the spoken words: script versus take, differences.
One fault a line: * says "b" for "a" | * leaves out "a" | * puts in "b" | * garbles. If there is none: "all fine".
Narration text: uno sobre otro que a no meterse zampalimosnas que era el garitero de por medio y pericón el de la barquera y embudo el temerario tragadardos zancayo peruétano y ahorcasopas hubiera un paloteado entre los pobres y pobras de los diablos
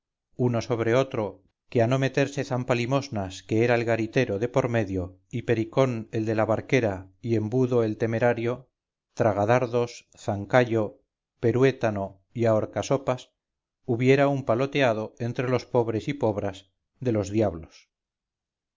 all fine